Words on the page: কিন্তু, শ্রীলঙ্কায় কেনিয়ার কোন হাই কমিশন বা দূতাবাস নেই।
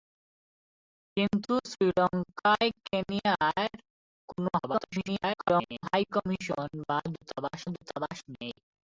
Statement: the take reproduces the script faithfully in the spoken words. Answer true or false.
false